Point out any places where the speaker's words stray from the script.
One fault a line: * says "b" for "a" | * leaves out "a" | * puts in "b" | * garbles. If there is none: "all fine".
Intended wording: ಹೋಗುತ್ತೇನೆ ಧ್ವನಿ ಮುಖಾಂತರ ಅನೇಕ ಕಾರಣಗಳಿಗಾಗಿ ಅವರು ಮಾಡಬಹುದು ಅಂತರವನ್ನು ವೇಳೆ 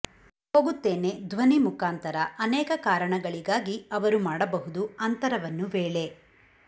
all fine